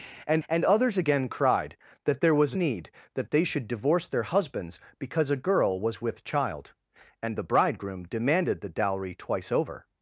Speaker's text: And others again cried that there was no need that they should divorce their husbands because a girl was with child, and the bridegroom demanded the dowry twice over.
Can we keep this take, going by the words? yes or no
no